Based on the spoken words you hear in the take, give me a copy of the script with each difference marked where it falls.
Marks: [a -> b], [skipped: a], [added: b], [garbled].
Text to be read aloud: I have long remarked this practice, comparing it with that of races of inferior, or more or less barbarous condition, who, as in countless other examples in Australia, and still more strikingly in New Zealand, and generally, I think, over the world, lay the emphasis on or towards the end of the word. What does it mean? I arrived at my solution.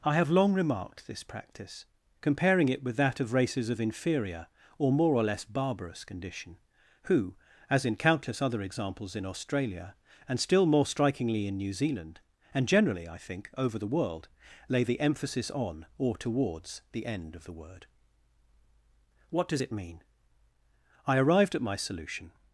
I have long remarked this practice, comparing it with that of races of inferior, or more or less barbarous condition, who, as in countless other examples in Australia, and still more strikingly in New Zealand, and generally, I think, over the world, lay the emphasis on or towards the end of the word. What does it mean? I arrived at my solution.